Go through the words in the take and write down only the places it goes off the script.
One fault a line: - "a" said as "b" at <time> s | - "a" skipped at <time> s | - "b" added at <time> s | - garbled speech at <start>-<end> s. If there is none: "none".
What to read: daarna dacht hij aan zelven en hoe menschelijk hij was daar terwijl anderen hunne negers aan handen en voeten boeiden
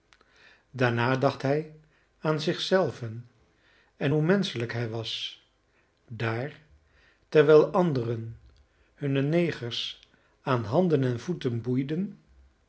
- "zich" added at 2.4 s